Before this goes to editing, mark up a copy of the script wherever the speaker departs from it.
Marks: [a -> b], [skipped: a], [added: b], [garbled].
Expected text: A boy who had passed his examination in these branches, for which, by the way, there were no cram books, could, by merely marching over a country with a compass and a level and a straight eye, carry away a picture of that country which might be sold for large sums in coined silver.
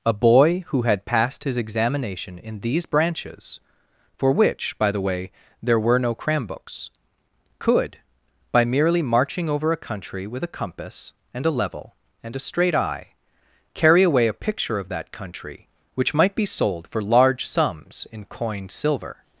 A boy who had passed his examination in these branches, for which, by the way, there were no cram books, could, by merely marching over a country with a compass and a level and a straight eye, carry away a picture of that country which might be sold for large sums in coined silver.